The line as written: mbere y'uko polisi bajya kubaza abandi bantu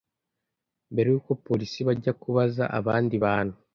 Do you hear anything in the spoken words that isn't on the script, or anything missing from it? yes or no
no